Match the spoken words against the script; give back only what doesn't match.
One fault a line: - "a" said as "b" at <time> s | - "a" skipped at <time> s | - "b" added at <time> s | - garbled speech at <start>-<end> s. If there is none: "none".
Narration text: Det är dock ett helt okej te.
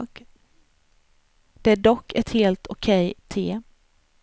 none